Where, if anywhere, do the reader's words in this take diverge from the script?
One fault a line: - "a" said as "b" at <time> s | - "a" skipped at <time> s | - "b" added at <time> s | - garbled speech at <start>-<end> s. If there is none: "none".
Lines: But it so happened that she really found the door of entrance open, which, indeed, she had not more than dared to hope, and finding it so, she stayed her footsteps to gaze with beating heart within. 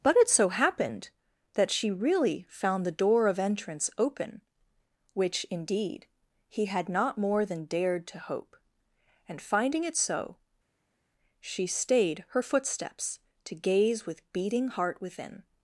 - "she" said as "he" at 6.5 s